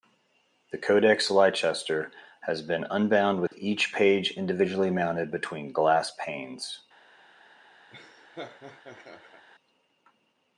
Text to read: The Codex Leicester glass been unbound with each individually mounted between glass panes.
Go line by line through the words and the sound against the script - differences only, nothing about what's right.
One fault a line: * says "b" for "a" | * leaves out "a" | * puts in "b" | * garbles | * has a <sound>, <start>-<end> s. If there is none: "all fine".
* says "has" for "glass"
* has a dropout, 3.5-3.5 s
* puts in "page"
* has a laugh, 7.9-9.5 s